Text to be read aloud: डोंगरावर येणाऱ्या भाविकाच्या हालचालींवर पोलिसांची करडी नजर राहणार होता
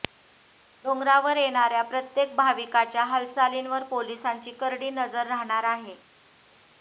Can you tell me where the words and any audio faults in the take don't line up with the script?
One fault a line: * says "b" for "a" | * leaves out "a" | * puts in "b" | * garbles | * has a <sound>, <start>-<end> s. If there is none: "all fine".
* puts in "प्रत्येक"
* says "आहे" for "होता"